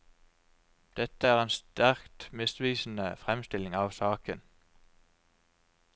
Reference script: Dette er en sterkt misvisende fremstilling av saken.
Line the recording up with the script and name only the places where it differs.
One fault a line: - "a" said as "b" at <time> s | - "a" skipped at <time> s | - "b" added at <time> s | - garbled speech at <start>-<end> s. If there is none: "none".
none